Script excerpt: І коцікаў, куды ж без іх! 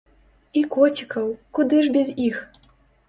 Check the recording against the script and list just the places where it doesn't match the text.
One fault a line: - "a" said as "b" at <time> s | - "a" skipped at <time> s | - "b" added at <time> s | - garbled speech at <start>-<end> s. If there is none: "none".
none